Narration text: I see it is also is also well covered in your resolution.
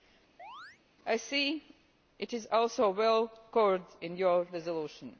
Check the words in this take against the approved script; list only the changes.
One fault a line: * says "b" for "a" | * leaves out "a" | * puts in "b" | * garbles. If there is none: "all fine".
* leaves out "is also"